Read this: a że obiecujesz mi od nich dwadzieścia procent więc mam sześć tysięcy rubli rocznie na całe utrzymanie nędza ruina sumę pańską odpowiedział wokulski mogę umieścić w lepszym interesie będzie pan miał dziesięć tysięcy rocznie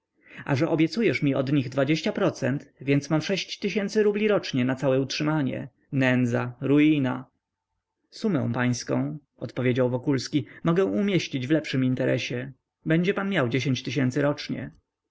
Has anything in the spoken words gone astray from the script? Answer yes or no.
no